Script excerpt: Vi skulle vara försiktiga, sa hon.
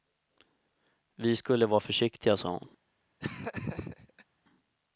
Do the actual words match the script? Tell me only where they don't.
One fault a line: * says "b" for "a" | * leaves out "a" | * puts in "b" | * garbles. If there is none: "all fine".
all fine